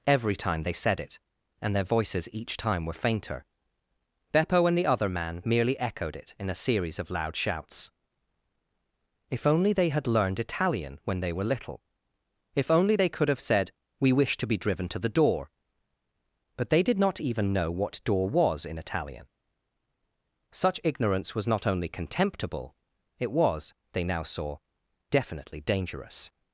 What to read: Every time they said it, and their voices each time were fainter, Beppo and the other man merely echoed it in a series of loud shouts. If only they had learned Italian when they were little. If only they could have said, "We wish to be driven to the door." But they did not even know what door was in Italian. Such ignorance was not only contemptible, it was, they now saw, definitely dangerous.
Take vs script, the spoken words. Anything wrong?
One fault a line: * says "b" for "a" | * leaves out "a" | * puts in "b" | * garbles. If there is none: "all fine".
all fine